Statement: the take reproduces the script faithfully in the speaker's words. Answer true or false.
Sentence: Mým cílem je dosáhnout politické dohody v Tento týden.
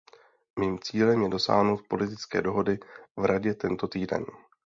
false